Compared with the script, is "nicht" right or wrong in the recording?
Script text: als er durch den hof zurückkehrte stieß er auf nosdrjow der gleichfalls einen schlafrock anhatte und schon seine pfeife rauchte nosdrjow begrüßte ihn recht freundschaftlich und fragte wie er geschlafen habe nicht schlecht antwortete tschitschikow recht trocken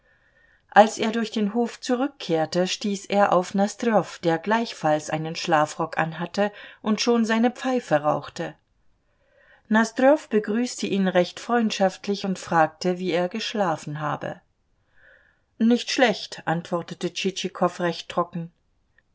right